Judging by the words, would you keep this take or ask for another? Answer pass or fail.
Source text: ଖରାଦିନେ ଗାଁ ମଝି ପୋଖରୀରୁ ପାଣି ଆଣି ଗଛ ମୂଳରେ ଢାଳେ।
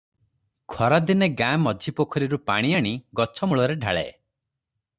pass